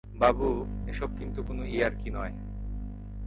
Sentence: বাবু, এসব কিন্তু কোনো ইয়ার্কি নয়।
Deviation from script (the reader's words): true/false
false